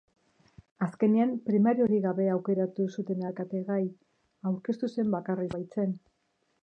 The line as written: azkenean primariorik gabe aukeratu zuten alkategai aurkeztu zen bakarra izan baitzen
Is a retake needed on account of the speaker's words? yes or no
yes